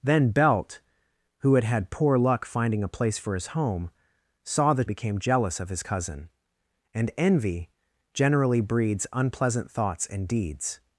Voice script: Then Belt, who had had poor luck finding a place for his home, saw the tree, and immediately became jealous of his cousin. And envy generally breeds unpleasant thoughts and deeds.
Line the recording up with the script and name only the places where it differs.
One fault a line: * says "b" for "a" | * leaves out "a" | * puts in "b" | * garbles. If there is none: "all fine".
* leaves out "tree and immediately"